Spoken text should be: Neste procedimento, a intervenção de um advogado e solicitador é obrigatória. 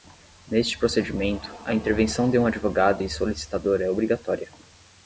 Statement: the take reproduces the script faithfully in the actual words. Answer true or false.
true